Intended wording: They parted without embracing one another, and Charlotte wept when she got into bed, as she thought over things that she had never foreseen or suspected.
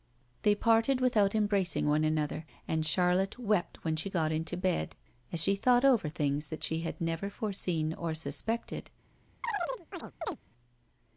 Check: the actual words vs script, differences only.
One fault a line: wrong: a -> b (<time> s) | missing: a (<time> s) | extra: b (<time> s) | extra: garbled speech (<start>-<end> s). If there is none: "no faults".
no faults